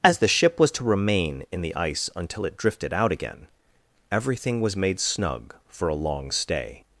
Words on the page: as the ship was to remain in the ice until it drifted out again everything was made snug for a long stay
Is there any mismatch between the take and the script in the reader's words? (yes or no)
no